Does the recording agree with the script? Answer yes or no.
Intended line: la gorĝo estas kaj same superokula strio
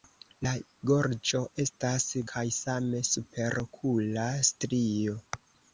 yes